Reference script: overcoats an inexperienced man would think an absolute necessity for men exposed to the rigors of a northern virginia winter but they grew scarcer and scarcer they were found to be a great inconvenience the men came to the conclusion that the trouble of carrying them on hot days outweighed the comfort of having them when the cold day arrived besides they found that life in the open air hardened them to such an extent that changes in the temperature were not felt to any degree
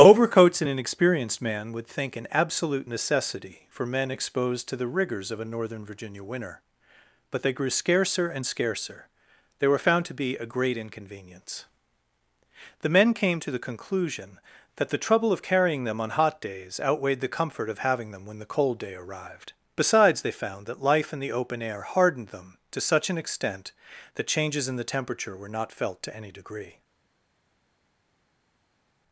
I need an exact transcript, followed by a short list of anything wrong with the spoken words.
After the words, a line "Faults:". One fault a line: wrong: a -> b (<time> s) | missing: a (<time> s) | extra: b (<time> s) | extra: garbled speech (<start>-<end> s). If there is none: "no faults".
overcoats an inexperienced man would think an absolute necessity for men exposed to the rigors of a northern virginia winter but they grew scarcer and scarcer they were found to be a great inconvenience the men came to the conclusion that the trouble of carrying them on hot days outweighed the comfort of having them when the cold day arrived besides they found that life in the open air hardened them to such an extent that changes in the temperature were not felt to any degree
Faults:
no faults